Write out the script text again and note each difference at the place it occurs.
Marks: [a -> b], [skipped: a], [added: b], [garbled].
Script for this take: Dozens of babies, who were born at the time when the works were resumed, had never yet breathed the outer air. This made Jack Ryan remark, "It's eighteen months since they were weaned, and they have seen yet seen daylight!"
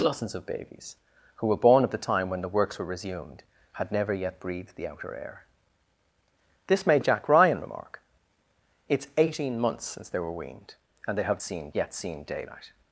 Dozens of babies, who were born at the time when the works were resumed, had never yet breathed the outer air. This made Jack Ryan remark, "It's eighteen months since they were weaned, and they have seen yet seen daylight!"